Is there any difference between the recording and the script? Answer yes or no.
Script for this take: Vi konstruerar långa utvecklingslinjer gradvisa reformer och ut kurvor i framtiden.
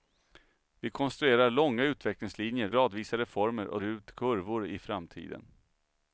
no